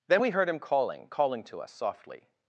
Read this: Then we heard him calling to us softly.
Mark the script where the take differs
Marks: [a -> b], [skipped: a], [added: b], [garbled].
Then we heard him calling [added: calling] to us softly.